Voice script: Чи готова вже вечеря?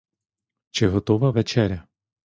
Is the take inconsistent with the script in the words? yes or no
yes